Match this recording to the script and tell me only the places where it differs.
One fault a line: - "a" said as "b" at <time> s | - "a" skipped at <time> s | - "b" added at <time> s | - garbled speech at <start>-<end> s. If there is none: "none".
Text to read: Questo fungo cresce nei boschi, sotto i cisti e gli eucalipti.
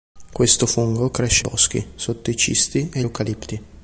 - "nei" skipped at 1.4 s
- "gli" skipped at 3.0 s